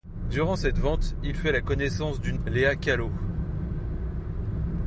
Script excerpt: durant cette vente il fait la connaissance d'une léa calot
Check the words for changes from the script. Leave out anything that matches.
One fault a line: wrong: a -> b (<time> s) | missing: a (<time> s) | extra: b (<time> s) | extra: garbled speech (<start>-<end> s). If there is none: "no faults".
no faults